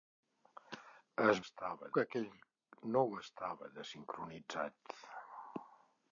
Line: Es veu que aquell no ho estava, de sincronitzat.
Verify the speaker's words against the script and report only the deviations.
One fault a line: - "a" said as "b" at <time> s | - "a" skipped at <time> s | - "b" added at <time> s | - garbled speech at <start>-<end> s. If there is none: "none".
- "veu" said as "estava" at 1.4 s